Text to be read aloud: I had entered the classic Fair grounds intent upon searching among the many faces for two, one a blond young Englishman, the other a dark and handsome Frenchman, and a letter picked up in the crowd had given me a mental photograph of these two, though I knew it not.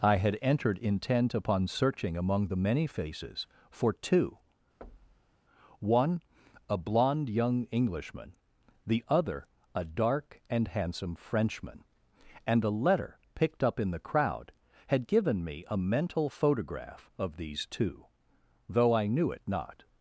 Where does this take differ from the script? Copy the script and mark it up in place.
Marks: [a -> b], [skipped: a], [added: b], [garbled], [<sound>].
I had entered [skipped: the classic Fair grounds] intent upon searching among the many faces for two, [thud] one a blond young Englishman, the other a dark and handsome Frenchman, and a letter picked up in the crowd had given me a mental photograph of these two, though I knew it not.